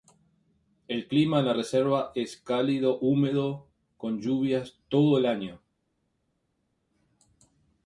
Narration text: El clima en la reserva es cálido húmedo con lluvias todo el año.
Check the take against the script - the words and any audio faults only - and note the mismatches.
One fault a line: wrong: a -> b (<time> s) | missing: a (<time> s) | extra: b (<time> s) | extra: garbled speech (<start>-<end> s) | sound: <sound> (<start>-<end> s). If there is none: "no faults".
no faults